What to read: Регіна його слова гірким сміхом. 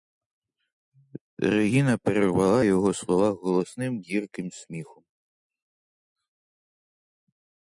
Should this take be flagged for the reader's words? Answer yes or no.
yes